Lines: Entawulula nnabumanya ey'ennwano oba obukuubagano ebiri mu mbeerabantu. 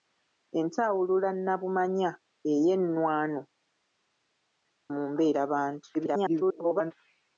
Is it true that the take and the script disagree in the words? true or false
true